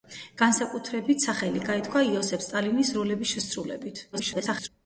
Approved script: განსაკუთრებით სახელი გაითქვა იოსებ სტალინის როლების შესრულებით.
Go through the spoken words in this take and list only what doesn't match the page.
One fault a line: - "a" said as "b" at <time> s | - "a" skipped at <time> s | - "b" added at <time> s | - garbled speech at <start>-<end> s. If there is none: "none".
- garbled speech at 4.1-4.7 s